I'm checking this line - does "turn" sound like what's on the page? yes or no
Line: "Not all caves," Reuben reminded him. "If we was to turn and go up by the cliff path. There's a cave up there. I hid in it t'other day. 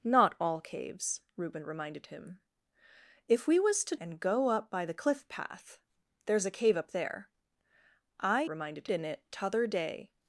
no